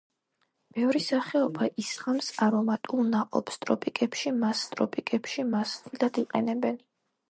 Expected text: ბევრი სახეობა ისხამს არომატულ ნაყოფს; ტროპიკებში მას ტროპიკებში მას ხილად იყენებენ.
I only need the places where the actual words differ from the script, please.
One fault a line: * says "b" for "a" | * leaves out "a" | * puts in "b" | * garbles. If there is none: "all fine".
all fine